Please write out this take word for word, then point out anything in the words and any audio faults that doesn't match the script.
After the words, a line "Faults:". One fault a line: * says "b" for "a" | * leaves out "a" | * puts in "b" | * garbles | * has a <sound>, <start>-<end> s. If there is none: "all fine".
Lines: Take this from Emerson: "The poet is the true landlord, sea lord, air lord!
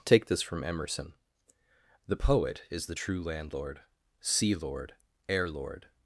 Take this from Emerson: "The poet is the true landlord, sea lord, air lord!
Faults:
all fine